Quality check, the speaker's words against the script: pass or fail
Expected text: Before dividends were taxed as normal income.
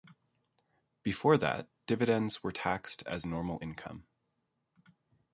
fail